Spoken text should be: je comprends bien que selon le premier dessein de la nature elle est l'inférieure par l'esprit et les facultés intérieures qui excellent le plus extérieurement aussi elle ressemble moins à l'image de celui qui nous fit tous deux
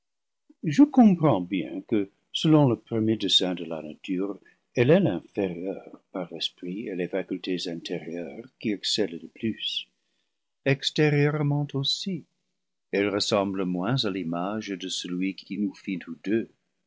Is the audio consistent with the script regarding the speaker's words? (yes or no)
yes